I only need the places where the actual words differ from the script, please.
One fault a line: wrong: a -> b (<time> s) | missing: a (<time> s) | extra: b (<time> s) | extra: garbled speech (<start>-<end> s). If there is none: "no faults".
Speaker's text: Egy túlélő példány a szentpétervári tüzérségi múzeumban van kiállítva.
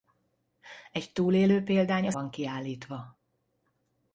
missing: szentpétervári tüzérségi múzeumban (2.1 s)